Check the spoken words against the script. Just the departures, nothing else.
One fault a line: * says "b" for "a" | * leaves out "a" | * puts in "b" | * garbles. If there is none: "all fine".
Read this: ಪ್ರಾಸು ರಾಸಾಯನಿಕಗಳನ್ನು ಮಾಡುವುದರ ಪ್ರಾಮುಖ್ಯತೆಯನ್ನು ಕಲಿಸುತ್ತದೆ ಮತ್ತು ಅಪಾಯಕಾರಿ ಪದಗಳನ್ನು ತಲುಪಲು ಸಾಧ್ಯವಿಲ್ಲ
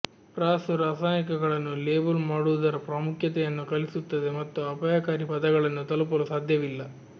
* puts in "ಲೇಬಲ್"